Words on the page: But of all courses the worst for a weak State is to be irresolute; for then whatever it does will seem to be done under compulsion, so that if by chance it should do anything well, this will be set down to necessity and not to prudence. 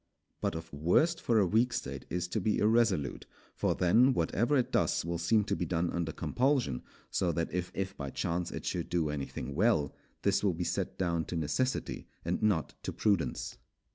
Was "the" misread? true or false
true